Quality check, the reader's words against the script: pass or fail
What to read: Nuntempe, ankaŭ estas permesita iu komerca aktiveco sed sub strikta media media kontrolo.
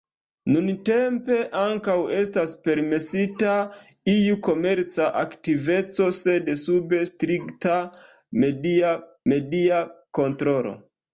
pass